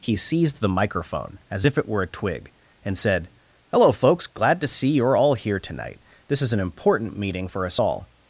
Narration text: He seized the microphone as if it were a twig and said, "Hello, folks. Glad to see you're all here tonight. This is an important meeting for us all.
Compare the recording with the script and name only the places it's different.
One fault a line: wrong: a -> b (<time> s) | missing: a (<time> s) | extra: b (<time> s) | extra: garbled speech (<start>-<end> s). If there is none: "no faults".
no faults